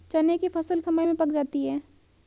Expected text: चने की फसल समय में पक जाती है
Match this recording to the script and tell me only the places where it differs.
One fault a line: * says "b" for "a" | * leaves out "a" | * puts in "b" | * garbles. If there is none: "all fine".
all fine